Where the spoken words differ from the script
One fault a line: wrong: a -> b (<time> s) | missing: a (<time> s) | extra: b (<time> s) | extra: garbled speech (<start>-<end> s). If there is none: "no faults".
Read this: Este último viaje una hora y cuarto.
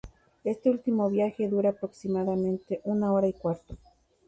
extra: dura aproximadamente (1.5 s)